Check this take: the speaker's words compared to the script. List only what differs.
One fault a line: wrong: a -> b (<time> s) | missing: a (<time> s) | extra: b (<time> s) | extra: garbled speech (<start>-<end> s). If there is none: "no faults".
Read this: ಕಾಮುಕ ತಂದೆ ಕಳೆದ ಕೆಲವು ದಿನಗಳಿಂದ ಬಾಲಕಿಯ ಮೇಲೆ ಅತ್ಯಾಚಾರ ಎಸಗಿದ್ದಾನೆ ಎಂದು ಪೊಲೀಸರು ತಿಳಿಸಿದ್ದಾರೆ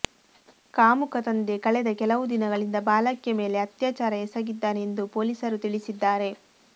no faults